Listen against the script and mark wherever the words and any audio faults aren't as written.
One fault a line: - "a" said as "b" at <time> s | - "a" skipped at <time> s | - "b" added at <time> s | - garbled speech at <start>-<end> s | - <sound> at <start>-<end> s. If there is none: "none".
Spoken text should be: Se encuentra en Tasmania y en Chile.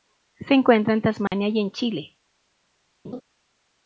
- dropout at 1.3-1.3 s
- laugh at 3.0-3.2 s